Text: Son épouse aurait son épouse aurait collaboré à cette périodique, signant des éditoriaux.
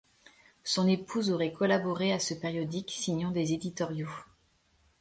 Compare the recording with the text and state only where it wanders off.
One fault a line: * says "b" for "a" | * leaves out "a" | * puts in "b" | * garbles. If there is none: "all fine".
* leaves out "son épouse aurait"
* says "ce" for "cette"